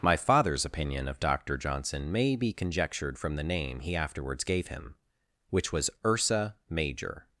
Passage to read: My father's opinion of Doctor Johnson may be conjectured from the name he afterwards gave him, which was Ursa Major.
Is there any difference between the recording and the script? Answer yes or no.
no